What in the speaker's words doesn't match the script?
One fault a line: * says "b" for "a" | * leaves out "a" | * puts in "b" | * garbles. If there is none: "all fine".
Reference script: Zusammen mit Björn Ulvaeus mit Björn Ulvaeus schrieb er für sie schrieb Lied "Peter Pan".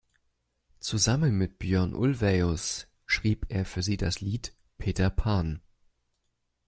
* leaves out "mit Björn Ulvaeus"
* says "das" for "schrieb"